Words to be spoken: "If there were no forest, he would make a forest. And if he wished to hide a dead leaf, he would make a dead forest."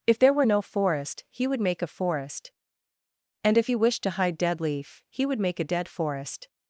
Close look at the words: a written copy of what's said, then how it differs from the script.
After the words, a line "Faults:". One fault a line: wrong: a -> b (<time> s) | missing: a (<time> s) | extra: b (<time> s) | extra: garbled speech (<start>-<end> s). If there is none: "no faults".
"If there were no forest, he would make a forest. And if he wished to hide dead leaf, he would make a dead forest."
Faults:
missing: a (4.4 s)